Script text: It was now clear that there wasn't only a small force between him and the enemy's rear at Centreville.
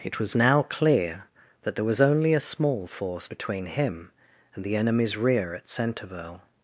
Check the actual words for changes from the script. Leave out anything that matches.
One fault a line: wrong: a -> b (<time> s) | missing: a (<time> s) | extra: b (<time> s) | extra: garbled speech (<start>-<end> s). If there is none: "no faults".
wrong: wasn't -> was (1.8 s)